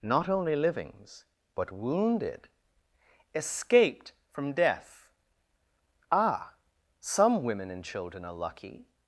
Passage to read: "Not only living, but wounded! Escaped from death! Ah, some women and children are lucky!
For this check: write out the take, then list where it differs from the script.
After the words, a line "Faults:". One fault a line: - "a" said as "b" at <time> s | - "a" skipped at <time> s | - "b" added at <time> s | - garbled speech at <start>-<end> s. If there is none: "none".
"Not only livings, but wounded! Escaped from death! Ah, some women and children are lucky!
Faults:
- "living" said as "livings" at 0.6 s